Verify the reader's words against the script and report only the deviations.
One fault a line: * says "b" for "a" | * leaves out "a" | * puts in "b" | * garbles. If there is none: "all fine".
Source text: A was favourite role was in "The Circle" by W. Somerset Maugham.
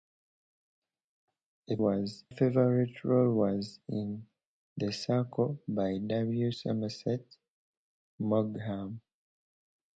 all fine